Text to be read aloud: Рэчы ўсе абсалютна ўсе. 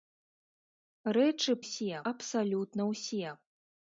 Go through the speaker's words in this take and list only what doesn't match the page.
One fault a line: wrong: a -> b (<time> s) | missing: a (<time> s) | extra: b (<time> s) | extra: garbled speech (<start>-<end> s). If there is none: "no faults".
no faults